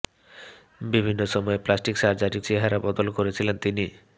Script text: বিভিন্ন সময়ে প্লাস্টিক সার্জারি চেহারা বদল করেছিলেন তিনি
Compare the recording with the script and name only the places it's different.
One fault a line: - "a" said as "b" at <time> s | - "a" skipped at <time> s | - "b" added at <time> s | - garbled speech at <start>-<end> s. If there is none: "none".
none